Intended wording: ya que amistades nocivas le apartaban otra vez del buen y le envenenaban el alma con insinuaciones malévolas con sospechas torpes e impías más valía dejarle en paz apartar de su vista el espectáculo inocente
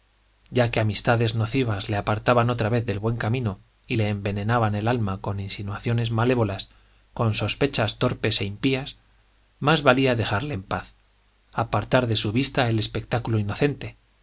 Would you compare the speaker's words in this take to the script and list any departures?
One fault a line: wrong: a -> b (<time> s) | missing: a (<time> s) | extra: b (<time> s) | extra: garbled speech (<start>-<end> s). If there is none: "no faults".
extra: camino (3.2 s)